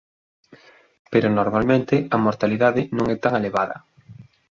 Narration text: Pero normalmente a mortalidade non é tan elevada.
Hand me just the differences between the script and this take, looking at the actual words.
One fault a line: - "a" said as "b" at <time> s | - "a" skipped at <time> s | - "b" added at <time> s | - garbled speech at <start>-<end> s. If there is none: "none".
none